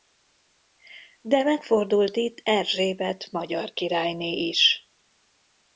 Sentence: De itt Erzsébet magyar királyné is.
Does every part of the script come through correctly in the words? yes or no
no